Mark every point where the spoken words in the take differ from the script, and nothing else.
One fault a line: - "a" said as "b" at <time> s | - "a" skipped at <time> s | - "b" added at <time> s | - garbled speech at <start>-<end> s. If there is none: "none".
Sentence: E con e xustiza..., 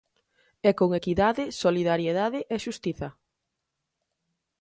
- "equidade solidariedade" added at 1.0 s